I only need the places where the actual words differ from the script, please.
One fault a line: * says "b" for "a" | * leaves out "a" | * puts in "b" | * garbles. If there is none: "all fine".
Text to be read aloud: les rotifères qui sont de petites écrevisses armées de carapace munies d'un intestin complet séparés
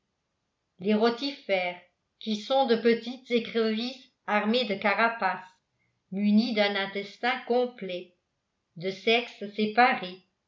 * puts in "de sexes"